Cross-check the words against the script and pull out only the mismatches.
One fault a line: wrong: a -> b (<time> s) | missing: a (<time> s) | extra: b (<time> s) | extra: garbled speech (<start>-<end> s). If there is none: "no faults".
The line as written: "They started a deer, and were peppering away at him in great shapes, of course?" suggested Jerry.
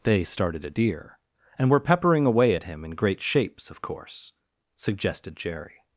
no faults